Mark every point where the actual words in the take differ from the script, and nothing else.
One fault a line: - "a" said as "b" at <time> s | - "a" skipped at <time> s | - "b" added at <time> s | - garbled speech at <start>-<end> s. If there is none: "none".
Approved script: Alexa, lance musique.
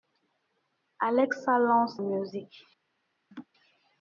none